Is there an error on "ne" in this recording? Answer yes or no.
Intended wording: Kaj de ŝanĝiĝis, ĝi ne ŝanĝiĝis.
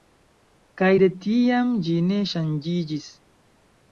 no